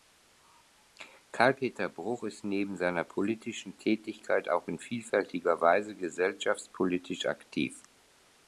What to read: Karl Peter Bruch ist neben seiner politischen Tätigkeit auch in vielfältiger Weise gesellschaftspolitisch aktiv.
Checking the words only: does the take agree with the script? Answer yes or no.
yes